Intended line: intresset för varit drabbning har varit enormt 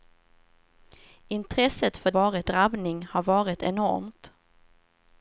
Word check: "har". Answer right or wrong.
right